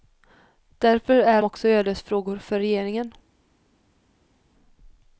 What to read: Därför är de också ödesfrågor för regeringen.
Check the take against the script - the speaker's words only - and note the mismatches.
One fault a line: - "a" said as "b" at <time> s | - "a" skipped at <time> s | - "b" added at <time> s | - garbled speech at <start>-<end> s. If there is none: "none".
- "de" skipped at 1.4 s